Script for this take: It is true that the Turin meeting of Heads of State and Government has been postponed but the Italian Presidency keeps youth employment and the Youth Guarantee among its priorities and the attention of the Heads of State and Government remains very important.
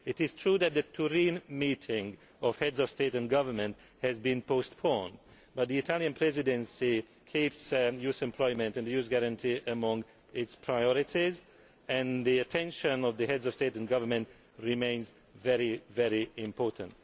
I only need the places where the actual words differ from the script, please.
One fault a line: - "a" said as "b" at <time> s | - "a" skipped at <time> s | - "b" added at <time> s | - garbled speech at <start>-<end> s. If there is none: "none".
none